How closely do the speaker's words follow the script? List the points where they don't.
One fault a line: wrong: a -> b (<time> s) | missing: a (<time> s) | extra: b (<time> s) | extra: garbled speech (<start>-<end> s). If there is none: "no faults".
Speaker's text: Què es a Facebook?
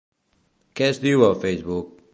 extra: diu (1.1 s)